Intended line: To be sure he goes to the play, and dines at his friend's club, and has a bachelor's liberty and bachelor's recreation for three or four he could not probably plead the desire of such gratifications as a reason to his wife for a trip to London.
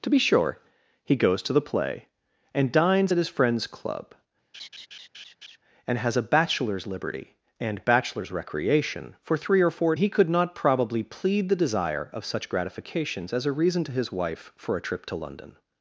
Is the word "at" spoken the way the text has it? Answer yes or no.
yes